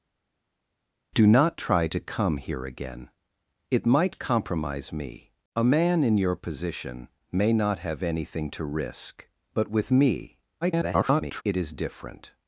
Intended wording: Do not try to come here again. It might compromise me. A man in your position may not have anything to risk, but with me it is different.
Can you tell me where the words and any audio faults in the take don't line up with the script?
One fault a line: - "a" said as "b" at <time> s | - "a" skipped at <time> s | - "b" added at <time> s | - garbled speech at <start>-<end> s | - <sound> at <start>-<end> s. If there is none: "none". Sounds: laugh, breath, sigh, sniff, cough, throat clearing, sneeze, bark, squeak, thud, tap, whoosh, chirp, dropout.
- garbled speech at 10.6-11.4 s